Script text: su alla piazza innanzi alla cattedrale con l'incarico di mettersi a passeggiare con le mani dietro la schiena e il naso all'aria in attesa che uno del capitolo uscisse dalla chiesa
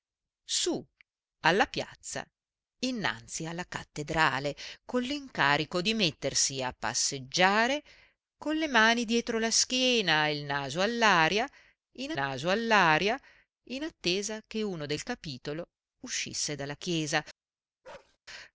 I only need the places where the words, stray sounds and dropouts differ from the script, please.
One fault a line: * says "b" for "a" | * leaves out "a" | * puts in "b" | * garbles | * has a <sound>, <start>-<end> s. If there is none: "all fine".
* puts in "naso all'aria in"
* has a bark, 17.8-18.2 s